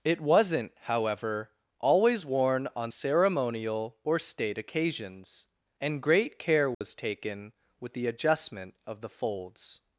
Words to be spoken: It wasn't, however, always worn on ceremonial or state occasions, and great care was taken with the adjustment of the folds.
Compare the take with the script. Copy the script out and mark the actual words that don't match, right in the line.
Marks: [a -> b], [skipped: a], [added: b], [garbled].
It wasn't, however, always worn on ceremonial or state occasions, and great care was taken with the adjustment of the folds.